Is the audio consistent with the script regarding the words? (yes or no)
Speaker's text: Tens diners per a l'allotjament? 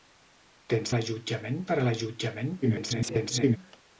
no